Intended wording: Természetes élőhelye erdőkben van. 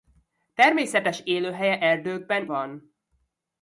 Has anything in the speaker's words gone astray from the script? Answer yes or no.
no